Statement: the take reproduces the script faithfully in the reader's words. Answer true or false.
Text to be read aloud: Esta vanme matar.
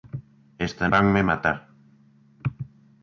true